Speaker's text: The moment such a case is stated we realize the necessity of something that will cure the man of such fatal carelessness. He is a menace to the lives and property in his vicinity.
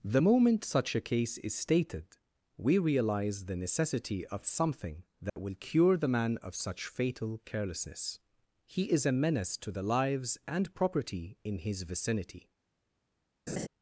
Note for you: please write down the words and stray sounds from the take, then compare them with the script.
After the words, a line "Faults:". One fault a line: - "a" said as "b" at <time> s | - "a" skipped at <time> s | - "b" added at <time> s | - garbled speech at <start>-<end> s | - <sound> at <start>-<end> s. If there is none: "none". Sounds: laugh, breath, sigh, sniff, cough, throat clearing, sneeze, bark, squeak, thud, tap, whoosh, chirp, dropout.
The moment such a case is stated we realize the necessity of something that will cure the man of such fatal carelessness. He is a menace to the lives and property in his vicinity.
Faults:
- dropout at 5.3-5.4 s
- laugh at 13.5-13.7 s